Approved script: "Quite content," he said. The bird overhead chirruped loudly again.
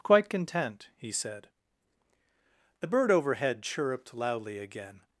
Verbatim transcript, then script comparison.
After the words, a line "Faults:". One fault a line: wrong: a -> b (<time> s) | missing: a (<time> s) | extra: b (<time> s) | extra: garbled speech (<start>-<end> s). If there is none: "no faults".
"Quite content," he said. The bird overhead chirruped loudly again.
Faults:
no faults